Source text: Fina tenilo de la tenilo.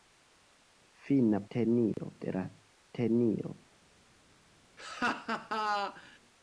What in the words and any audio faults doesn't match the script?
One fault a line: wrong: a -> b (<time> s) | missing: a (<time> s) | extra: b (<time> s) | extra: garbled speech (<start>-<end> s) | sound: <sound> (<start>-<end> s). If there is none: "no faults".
sound: dropout (1.9-2.0 s)
sound: laugh (4.8-6.2 s)